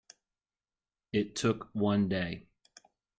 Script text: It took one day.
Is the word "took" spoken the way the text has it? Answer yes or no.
yes